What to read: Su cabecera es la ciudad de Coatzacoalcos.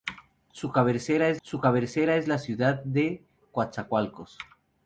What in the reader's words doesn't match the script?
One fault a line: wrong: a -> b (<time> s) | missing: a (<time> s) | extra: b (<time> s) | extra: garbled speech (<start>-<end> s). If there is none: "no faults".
extra: su cabecera es (1.4 s)